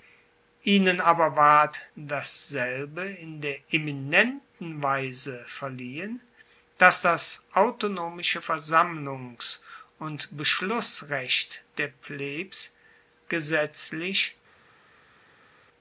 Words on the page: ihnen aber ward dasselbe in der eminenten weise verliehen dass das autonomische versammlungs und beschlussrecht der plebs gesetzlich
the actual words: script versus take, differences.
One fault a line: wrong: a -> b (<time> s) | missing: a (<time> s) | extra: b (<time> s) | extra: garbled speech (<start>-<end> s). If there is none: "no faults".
no faults